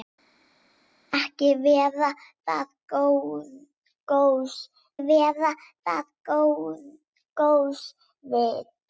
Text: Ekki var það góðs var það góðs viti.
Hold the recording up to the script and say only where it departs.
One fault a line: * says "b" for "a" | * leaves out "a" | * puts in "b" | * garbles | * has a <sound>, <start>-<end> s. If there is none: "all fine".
all fine